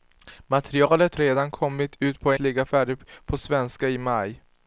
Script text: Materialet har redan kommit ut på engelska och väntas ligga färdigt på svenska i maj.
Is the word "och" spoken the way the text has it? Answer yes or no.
no